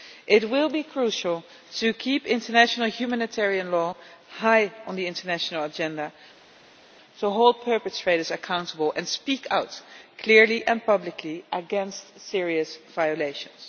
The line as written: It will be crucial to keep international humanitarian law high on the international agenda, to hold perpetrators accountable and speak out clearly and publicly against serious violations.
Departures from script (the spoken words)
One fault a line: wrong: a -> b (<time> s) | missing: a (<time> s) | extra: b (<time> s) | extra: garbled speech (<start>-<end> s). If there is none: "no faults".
no faults